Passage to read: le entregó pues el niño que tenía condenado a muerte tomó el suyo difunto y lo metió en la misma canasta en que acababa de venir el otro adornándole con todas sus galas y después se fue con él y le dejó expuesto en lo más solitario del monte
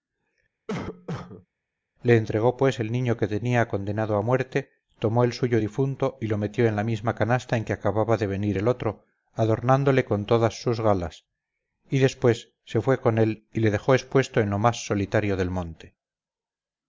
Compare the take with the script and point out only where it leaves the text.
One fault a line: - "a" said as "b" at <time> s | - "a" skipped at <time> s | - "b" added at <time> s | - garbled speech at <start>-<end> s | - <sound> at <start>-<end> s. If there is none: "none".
- cough at 0.7-1.5 s